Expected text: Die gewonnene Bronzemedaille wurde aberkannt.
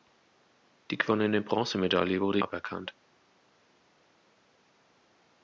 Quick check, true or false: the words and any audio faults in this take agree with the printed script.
true